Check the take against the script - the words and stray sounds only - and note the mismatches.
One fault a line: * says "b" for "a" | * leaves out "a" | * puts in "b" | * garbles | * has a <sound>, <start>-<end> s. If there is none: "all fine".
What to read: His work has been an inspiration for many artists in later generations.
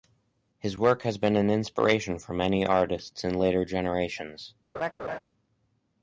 * has a laugh, 4.7-5.2 s